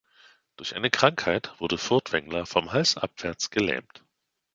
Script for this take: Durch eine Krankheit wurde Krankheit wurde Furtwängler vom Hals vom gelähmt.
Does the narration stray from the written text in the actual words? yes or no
yes